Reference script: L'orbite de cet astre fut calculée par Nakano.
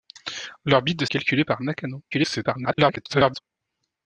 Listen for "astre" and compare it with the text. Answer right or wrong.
wrong